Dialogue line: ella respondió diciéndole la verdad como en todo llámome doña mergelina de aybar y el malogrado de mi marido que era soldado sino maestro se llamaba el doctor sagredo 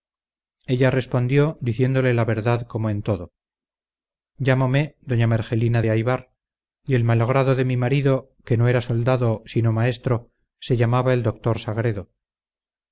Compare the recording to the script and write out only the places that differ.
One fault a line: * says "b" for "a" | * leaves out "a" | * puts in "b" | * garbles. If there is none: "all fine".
* puts in "no"